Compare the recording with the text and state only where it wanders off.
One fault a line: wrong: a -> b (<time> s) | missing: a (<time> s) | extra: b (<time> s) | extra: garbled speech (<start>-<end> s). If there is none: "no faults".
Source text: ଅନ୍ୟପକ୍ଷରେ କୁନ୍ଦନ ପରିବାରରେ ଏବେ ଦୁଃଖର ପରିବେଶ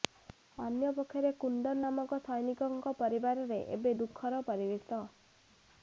extra: ନାମକ ସୈନିକଙ୍କ (1.8 s)